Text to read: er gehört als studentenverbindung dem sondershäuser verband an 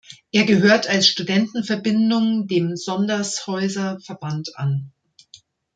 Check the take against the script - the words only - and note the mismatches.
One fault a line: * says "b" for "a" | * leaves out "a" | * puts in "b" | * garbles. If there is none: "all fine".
all fine